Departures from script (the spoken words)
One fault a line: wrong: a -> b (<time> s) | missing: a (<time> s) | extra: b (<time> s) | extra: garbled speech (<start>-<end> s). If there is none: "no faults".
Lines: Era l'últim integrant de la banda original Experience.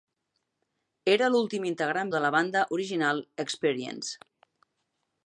no faults